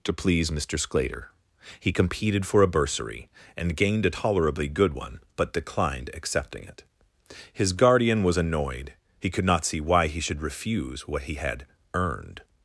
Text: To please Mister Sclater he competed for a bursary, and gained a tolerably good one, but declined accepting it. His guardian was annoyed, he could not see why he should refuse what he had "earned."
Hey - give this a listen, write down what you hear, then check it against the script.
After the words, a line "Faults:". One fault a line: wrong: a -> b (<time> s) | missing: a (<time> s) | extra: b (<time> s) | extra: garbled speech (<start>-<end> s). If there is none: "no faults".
To please Mister Sclater he competed for a bursary, and gained a tolerably good one, but declined accepting it. His guardian was annoyed, he could not see why he should refuse what he had "earned."
Faults:
no faults